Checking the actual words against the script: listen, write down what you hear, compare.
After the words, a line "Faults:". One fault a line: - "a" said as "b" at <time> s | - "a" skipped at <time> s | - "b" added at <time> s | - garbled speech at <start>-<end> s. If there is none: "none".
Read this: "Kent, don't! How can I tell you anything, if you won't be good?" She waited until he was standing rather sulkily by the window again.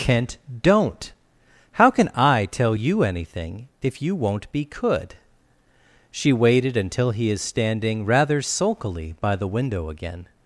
"Kent, don't! How can I tell you anything, if you won't be could?" She waited until he is standing rather sulkily by the window again.
Faults:
- "good" said as "could" at 4.6 s
- "was" said as "is" at 7.3 s